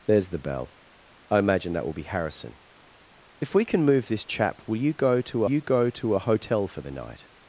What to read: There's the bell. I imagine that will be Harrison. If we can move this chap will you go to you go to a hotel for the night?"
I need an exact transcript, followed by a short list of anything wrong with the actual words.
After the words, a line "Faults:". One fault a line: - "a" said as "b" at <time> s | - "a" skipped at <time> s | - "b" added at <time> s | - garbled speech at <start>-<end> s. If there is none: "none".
There's the bell. I imagine that will be Harrison. If we can move this chap will you go to you go to a hotel for the night?"
Faults:
none